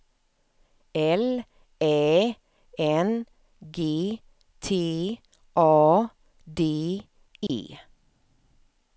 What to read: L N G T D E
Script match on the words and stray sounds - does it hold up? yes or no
no